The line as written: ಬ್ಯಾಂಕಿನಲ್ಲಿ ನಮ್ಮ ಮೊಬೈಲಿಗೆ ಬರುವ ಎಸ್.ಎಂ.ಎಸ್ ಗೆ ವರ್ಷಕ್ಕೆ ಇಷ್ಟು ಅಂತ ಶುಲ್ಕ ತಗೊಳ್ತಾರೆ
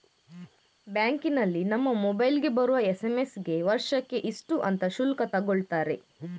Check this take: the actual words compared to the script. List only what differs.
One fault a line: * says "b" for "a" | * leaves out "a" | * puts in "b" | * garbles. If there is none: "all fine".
all fine